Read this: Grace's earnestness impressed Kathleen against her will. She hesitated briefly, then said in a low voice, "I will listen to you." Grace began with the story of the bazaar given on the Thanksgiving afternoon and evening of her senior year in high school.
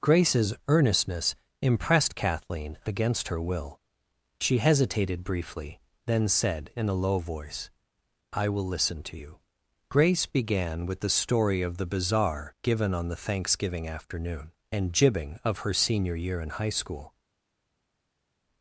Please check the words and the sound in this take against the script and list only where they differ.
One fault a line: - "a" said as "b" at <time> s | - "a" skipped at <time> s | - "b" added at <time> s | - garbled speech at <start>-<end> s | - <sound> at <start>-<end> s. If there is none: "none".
- "evening" said as "jibbing" at 14.9 s